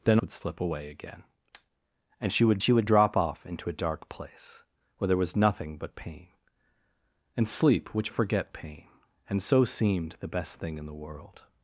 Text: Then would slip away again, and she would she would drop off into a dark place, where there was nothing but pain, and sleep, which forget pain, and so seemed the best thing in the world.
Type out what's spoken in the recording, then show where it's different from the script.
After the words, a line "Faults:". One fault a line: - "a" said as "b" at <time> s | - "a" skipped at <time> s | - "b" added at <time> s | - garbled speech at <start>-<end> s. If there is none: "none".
Then would slip away again, and she would she would drop off into a dark place, where there was nothing but pain, and sleep, which forget pain, and so seemed the best thing in the world.
Faults:
none